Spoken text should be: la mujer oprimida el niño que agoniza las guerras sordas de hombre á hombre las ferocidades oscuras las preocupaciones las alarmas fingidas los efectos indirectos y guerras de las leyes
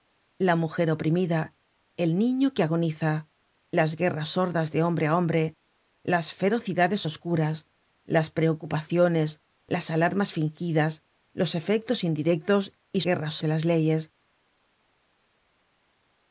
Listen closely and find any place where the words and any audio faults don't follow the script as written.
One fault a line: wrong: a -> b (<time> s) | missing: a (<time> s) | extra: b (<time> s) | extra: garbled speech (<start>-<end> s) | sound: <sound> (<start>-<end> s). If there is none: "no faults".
no faults